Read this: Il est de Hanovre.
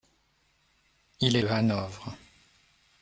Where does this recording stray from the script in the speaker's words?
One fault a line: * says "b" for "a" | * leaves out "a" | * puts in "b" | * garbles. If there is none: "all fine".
all fine